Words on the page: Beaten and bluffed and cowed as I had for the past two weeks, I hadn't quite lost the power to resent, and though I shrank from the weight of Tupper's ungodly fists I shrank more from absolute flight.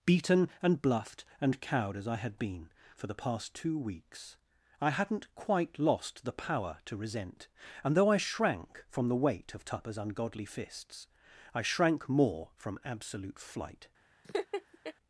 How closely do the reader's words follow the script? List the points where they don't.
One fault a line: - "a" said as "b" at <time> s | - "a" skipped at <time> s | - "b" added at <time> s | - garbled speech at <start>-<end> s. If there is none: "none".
- "been" added at 2.4 s